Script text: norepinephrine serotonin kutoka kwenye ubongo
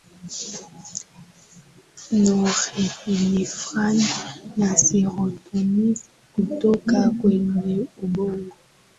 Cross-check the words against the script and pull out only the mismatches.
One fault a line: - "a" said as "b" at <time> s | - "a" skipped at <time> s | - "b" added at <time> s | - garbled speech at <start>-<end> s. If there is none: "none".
- "na" added at 4.6 s